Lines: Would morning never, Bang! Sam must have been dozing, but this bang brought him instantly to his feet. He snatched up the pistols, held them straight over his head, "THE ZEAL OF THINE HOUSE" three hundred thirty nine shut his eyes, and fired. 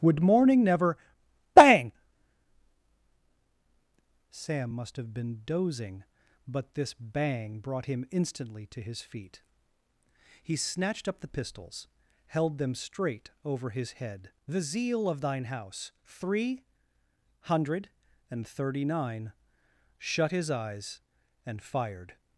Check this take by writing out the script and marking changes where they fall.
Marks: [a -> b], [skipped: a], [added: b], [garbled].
Would morning never, Bang! Sam must have been dozing, but this bang brought him instantly to his feet. He snatched up the pistols, held them straight over his head, "THE ZEAL OF THINE HOUSE" three hundred [added: and] thirty nine shut his eyes, and fired.